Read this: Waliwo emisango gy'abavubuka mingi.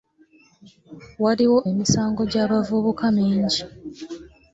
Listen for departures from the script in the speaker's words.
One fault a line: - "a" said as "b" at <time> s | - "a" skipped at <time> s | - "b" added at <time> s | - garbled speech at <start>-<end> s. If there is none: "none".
none